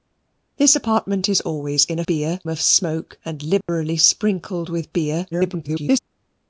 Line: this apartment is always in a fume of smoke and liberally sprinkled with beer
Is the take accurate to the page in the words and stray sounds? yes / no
no